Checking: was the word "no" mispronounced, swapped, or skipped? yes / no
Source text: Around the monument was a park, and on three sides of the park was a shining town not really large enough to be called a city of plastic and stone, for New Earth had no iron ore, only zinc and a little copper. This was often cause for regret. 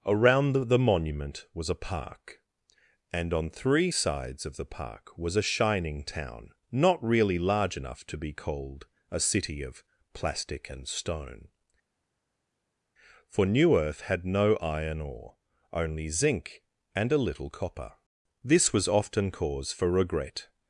no